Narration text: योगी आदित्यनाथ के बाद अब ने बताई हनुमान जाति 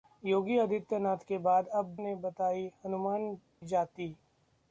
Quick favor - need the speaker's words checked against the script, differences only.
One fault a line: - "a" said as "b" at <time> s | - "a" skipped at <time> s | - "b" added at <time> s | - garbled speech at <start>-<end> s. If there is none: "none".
none